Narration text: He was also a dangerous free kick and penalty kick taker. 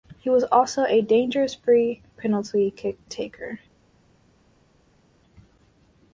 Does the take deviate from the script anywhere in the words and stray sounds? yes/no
yes